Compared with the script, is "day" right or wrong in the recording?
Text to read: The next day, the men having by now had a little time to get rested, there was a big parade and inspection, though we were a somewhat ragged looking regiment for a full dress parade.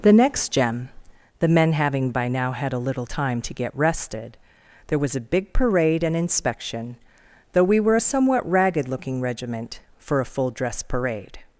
wrong